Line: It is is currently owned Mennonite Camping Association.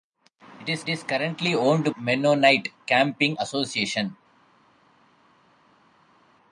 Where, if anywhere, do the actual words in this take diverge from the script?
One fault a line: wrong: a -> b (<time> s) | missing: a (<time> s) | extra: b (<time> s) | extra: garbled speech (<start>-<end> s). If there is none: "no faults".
no faults